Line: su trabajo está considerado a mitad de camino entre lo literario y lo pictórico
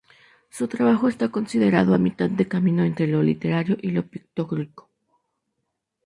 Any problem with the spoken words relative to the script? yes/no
no